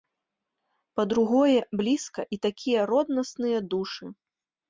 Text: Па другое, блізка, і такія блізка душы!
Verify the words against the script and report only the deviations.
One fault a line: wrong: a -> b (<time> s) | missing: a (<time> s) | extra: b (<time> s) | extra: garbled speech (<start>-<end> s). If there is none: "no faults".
wrong: блізка -> роднасныя (2.9 s)